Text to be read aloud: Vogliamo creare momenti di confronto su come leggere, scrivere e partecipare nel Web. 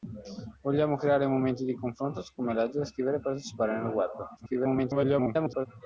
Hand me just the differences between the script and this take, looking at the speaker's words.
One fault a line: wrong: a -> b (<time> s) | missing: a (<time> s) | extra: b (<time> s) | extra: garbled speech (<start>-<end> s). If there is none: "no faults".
extra: garbled speech (4.4-5.7 s)